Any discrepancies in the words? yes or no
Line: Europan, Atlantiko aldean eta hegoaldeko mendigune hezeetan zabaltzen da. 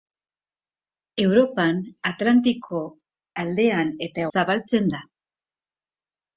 yes